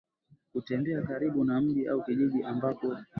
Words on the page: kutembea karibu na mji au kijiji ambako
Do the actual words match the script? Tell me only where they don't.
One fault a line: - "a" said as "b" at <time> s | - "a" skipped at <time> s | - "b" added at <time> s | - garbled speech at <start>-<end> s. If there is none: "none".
none